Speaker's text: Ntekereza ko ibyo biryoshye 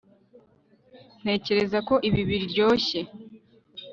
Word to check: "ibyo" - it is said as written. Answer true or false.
false